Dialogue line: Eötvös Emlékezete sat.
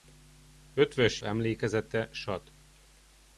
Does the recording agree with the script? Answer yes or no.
yes